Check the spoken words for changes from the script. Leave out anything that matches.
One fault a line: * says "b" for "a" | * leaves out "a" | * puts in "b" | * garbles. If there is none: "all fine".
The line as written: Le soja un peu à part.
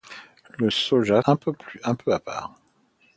all fine